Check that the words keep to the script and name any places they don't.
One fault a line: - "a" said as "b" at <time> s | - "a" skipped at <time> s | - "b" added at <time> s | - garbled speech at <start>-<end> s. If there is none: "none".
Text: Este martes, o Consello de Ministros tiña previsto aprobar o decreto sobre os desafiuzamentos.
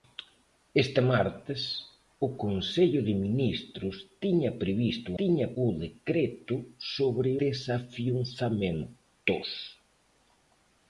- "aprobar" said as "tiña" at 5.2 s
- "os" skipped at 7.3 s